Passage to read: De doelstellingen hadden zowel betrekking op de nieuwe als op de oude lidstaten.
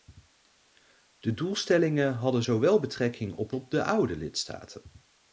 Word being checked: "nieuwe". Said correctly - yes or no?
no